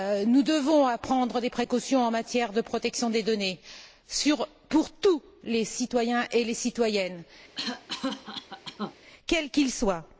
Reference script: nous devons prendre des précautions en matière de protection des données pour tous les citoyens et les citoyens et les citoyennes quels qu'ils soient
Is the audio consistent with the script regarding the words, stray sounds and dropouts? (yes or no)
no